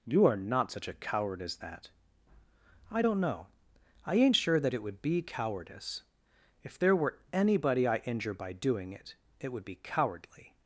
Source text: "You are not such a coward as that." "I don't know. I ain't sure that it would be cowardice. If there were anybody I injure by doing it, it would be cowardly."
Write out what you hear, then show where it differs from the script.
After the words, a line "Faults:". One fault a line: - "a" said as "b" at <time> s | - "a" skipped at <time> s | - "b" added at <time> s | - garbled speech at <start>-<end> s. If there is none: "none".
"You are not such a coward as that." "I don't know. I ain't sure that it would be cowardice. If there were anybody I injure by doing it, it would be cowardly."
Faults:
none